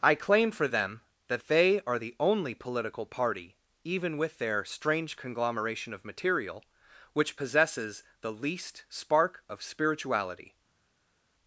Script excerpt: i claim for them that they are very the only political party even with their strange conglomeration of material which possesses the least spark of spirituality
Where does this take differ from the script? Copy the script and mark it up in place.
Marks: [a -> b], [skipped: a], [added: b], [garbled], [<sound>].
i claim for them that they are [skipped: very] the only political party even with their strange conglomeration of material which possesses the least spark of spirituality